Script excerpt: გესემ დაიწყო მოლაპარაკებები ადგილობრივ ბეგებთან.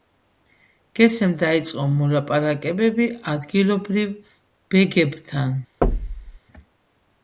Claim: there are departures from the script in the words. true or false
false